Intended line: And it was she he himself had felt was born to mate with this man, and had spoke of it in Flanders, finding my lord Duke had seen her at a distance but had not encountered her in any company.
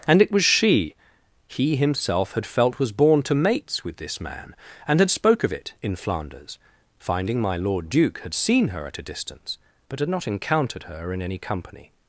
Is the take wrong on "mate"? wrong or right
wrong